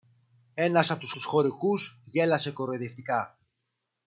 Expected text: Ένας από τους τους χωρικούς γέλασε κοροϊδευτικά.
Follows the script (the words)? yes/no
yes